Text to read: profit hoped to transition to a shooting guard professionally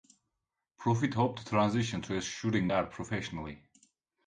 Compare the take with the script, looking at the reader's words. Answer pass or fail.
pass